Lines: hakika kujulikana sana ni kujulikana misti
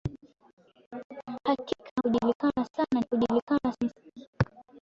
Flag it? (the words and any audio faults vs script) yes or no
no